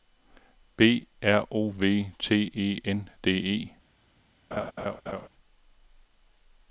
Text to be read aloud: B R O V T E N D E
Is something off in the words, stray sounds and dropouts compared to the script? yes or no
yes